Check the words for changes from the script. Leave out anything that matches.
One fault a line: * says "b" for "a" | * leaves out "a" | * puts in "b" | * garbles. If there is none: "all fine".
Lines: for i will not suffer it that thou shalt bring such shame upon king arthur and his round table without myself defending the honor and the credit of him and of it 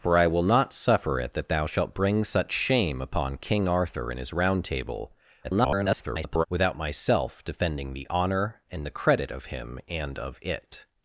* garbles